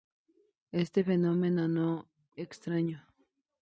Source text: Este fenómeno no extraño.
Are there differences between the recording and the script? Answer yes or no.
no